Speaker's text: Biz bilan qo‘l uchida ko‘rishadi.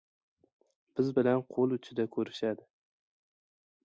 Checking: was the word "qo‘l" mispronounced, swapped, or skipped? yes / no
no